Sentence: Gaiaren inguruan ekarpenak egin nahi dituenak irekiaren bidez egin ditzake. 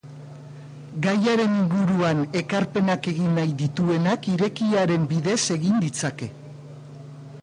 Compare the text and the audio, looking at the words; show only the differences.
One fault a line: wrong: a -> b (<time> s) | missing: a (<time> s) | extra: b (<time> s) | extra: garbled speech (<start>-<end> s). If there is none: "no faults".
no faults